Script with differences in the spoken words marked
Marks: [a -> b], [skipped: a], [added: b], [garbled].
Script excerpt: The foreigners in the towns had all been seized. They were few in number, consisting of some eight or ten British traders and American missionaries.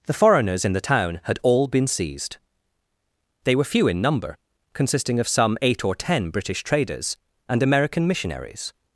The foreigners in the [towns -> town] had all been seized. They were few in number, consisting of some eight or ten British traders and American missionaries.